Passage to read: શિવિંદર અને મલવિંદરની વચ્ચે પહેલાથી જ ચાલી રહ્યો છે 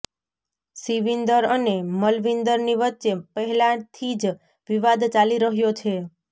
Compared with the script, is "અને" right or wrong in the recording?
right